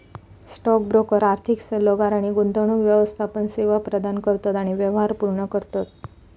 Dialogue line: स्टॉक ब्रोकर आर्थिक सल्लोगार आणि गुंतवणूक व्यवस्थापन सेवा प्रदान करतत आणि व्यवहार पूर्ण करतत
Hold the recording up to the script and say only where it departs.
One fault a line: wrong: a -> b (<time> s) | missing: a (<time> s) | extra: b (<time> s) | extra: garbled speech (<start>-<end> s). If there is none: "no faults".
no faults